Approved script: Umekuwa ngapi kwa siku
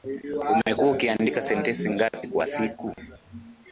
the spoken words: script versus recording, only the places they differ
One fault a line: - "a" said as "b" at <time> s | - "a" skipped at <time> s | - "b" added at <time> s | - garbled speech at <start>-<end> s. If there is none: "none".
- "ukiandika sentensi" added at 0.9 s